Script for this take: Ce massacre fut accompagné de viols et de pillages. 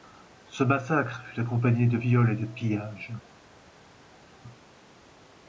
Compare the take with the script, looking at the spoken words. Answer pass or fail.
pass